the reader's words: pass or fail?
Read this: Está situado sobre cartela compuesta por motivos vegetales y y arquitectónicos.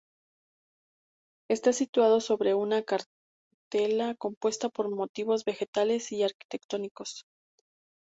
fail